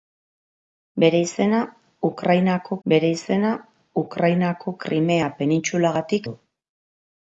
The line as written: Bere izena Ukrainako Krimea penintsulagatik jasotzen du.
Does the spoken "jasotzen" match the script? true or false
false